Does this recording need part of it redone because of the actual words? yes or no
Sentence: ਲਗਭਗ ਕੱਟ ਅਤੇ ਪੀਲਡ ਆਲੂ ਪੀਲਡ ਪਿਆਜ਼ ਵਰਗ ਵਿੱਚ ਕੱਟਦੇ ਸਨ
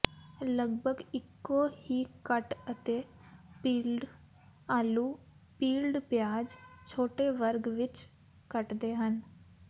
yes